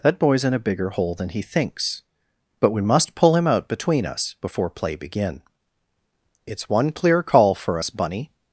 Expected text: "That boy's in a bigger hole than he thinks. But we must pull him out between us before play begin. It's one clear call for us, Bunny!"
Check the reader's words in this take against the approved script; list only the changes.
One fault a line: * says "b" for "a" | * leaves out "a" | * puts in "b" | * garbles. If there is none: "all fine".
all fine